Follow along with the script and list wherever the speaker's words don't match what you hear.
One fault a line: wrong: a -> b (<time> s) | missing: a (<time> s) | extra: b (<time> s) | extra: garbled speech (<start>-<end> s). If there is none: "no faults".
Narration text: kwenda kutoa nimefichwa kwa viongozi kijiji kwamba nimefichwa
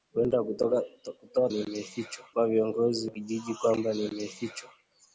no faults